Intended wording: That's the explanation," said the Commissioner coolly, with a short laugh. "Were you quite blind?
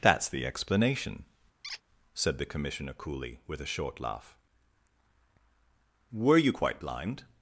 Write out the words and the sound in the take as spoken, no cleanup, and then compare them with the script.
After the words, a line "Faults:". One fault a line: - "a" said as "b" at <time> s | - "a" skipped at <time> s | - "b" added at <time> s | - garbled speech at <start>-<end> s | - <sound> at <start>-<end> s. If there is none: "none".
That's the explanation," said the Commissioner coolly, with a short laugh. "Were you quite blind?
Faults:
- squeak at 1.6-1.8 s